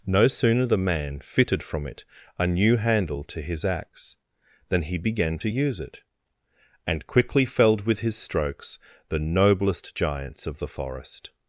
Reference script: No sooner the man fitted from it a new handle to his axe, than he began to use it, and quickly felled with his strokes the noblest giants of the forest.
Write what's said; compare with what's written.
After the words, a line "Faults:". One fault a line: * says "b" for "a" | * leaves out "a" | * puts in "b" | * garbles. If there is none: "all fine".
No sooner the man fitted from it a new handle to his axe, than he began to use it, and quickly felled with his strokes the noblest giants of the forest.
Faults:
all fine